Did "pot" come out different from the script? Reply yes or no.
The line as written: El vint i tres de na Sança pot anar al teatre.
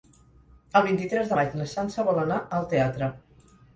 yes